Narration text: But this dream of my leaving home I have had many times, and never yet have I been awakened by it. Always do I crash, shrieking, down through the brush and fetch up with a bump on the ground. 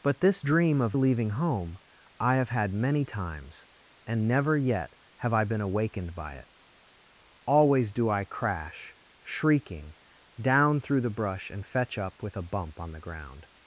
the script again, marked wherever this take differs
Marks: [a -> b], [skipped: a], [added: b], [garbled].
But this dream of [skipped: my] leaving home I have had many times, and never yet have I been awakened by it. Always do I crash, shrieking, down through the brush and fetch up with a bump on the ground.